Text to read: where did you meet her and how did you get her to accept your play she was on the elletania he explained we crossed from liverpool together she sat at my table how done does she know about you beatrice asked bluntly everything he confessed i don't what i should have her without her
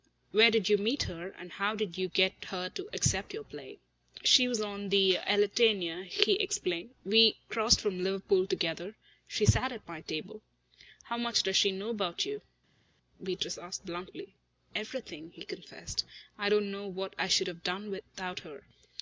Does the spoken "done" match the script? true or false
false